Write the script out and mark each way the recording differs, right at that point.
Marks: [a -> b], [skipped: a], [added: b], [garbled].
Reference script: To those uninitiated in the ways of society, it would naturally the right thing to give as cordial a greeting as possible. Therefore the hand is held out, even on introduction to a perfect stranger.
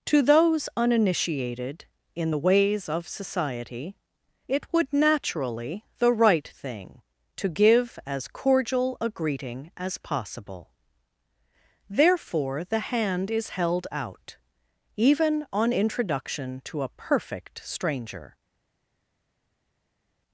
To those uninitiated in the ways of society, it would naturally the right thing to give as cordial a greeting as possible. Therefore the hand is held out, even on introduction to a perfect stranger.